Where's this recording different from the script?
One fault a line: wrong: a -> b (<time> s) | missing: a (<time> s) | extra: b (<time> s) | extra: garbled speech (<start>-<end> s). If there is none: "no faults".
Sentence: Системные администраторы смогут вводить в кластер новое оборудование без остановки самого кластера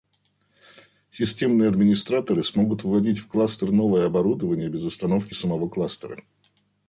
no faults